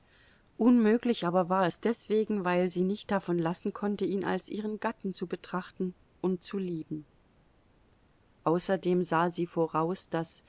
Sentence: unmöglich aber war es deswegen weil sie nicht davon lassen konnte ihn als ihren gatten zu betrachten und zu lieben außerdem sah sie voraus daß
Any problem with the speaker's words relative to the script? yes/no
no